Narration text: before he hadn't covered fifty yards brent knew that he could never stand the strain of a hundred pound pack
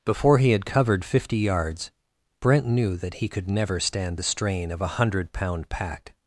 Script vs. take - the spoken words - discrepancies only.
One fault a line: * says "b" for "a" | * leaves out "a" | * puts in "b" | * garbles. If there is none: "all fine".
* says "had" for "hadn't"